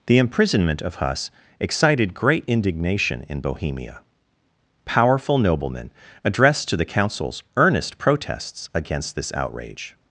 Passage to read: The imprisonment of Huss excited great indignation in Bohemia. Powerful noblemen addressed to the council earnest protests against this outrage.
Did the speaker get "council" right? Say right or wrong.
wrong